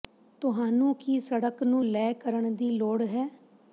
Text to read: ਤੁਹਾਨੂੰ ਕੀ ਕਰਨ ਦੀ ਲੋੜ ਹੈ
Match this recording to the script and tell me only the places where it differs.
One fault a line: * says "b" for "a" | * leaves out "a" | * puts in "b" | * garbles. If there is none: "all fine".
* puts in "ਸੜਕ ਨੂੰ ਲੈ"